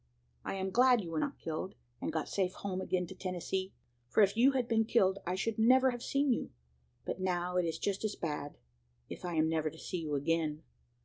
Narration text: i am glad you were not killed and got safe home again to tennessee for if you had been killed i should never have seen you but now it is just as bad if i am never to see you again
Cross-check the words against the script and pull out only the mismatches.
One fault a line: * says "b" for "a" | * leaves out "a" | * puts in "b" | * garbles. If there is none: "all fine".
all fine